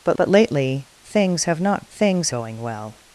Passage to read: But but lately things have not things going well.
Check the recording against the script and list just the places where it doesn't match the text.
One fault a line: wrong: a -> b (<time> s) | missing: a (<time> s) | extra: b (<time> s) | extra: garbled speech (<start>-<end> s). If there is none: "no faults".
no faults